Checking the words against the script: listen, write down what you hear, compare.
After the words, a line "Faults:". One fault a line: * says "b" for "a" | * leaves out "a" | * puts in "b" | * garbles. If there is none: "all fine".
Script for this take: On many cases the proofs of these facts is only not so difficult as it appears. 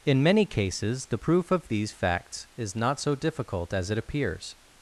In many cases the proof of these facts is not so difficult as it appears.
Faults:
* says "In" for "On"
* says "proof" for "proofs"
* leaves out "only"